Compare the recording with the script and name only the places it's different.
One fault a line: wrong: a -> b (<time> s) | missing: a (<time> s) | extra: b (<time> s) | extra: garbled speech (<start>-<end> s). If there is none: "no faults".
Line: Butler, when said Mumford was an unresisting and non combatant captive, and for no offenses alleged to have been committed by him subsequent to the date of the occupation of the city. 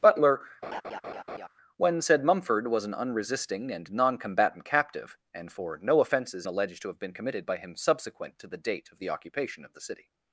no faults